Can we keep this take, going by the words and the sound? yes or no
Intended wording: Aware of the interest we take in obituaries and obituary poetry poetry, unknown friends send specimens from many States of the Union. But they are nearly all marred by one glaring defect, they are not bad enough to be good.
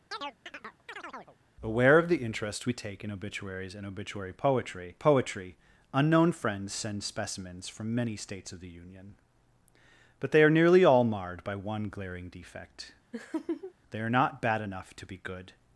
no